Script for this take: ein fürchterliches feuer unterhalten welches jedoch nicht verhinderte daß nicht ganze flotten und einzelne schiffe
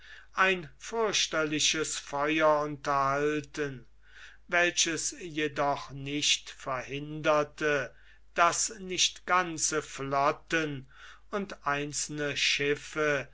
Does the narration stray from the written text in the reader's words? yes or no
no